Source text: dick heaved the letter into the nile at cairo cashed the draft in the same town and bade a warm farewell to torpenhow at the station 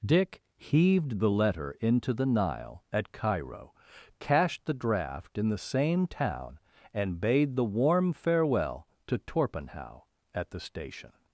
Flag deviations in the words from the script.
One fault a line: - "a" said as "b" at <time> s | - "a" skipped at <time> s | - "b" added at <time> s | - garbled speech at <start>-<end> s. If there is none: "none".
- "a" said as "the" at 7.6 s